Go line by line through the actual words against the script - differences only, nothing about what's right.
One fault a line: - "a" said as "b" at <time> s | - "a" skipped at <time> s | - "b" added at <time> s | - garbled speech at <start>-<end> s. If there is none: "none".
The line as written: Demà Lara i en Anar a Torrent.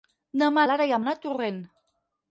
none